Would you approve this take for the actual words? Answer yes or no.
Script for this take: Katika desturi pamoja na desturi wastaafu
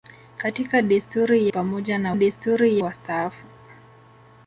yes